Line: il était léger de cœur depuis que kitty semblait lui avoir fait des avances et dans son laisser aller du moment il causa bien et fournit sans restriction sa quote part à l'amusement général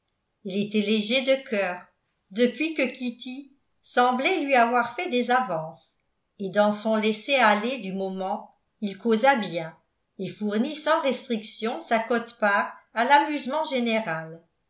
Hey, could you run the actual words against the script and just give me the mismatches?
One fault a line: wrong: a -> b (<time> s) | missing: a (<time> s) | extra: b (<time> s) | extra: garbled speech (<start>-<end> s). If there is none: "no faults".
no faults